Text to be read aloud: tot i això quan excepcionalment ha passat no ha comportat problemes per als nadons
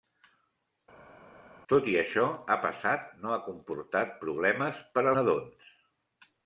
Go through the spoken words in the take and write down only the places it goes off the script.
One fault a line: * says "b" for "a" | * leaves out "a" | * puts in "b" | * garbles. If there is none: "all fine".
* leaves out "quan excepcionalment"
* leaves out "als"